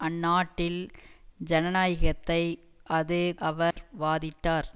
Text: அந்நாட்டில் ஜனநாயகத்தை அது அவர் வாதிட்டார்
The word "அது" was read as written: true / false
true